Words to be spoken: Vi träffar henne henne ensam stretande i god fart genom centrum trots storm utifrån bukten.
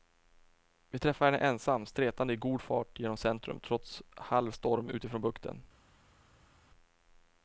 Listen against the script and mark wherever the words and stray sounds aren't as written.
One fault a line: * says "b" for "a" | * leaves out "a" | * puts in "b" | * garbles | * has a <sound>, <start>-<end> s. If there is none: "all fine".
* leaves out "henne"
* puts in "halv"